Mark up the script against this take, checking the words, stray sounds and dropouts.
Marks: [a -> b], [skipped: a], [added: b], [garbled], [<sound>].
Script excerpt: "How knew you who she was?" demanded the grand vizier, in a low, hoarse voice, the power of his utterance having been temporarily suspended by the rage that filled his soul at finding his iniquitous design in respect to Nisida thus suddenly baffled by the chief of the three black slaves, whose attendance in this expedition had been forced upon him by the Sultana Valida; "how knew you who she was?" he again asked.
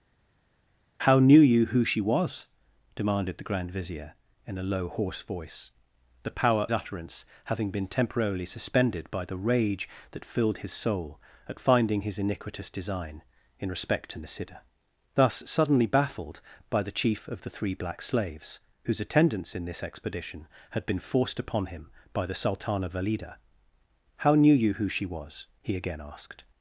"How knew you who she was?" demanded the grand vizier, in a low, hoarse voice, the power [skipped: of his] utterance having been temporarily suspended by the rage that filled his soul at finding his iniquitous design in respect to Nisida thus suddenly baffled by the chief of the three black slaves, whose attendance in this expedition had been forced upon him by the Sultana Valida; "how knew you who she was?" he again asked.